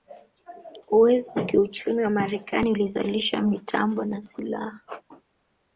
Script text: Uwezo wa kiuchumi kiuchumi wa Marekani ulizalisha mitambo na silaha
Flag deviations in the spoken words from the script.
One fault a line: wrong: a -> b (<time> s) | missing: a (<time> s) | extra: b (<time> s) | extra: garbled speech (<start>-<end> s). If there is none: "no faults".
missing: kiuchumi (2.0 s)